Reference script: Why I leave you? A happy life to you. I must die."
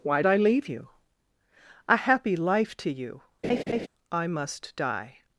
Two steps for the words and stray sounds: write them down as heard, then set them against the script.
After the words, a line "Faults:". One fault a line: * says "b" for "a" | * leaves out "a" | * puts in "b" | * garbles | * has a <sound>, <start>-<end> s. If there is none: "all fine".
Why I leave you? A happy life to you. I must die."
Faults:
* has a laugh, 3.4-3.9 s